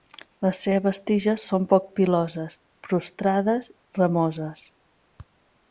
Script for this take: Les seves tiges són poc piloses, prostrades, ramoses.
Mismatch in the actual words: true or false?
false